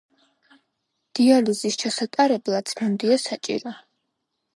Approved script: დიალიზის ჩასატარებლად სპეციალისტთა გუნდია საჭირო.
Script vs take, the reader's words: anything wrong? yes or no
yes